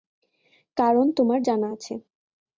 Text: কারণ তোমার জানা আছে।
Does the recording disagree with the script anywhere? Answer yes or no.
no